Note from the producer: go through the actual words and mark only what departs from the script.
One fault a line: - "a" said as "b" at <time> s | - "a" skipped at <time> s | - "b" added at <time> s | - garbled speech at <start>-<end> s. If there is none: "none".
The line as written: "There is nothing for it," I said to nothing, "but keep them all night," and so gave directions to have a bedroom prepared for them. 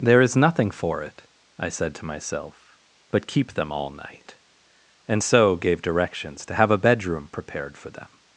- "nothing" said as "myself" at 2.0 s